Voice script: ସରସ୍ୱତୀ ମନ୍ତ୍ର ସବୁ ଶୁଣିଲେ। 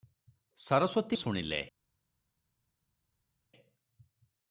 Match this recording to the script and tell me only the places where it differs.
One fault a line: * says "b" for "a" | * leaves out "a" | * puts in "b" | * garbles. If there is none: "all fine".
* leaves out "ମନ୍ତ୍ର ସବୁ"